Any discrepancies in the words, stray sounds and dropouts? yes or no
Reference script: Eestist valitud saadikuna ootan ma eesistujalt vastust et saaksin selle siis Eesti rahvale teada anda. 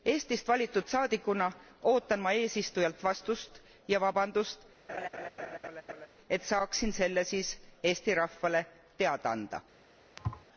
yes